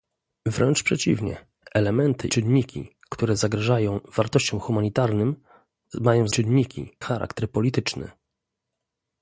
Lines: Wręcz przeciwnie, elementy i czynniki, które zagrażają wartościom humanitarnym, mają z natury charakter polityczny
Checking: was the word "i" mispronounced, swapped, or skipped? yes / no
yes